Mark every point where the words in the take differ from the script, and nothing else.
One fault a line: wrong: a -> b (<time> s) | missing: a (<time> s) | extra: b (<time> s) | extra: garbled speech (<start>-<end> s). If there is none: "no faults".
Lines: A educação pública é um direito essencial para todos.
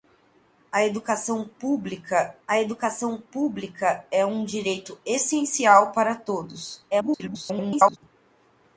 extra: a educação pública (2.5 s)
extra: garbled speech (6.9-8.0 s)